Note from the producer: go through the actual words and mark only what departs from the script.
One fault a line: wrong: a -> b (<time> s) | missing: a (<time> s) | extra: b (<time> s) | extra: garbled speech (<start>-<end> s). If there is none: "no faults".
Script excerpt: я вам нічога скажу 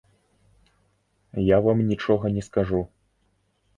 extra: не (2.3 s)